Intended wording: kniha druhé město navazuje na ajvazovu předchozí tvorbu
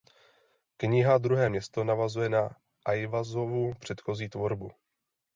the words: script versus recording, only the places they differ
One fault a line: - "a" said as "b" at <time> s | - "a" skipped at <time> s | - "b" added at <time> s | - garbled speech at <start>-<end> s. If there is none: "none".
none